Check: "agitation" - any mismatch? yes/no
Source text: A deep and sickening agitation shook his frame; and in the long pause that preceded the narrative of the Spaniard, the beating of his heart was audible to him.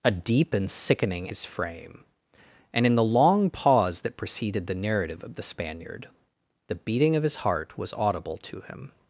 yes